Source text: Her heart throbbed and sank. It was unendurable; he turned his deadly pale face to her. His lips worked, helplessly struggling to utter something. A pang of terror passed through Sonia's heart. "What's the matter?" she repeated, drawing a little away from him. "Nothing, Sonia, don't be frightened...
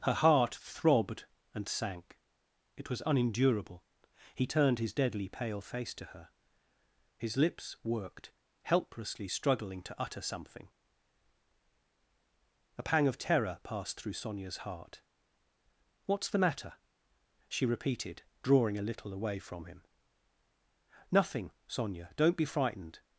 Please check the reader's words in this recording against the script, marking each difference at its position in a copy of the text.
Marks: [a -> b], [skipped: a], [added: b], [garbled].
Her heart throbbed and sank. It was unendurable; he turned his deadly pale face to her. His lips worked, helplessly struggling to utter something. A pang of terror passed through Sonia's heart. "What's the matter?" she repeated, drawing a little away from him. "Nothing, Sonia, don't be frightened...